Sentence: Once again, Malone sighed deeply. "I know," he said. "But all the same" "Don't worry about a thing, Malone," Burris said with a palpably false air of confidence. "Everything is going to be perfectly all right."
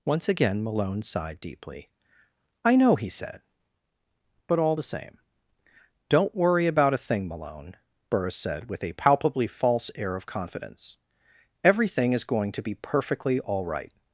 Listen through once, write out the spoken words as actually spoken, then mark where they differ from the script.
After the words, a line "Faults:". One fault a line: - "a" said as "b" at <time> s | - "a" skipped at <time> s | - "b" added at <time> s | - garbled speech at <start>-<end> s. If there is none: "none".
Once again, Malone sighed deeply. "I know," he said. "But all the same" "Don't worry about a thing, Malone," Burris said with a palpably false air of confidence. "Everything is going to be perfectly all right."
Faults:
none